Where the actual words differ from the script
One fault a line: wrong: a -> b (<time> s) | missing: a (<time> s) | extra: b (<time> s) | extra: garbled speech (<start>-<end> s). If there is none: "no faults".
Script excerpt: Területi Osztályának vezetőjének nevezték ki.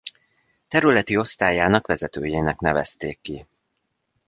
no faults